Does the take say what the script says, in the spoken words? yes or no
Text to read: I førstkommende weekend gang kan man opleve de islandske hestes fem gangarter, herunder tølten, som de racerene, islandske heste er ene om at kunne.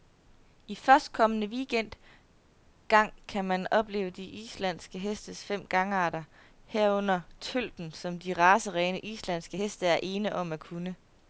yes